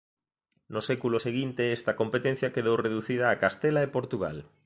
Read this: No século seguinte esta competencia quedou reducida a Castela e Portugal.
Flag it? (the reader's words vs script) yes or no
no